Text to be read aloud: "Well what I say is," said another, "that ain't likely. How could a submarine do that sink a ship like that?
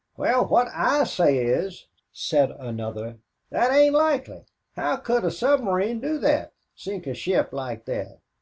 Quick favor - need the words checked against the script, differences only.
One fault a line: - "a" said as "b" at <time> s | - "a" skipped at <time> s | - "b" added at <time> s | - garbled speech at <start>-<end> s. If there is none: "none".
none